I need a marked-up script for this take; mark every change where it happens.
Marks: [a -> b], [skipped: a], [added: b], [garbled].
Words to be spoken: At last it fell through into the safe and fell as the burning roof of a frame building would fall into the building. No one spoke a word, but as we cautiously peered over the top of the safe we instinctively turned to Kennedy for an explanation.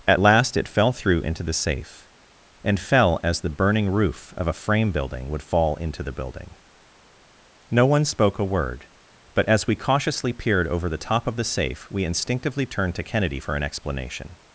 At last it fell through into the safe and fell as the burning roof of a frame building would fall into the building. No one spoke a word, but as we cautiously peered over the top of the safe we instinctively turned to Kennedy for an explanation.